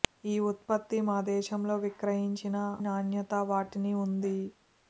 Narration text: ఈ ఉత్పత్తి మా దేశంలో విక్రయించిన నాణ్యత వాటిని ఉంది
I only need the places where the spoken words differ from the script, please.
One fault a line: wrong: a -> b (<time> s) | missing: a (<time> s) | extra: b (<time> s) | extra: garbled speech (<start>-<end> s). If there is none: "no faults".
no faults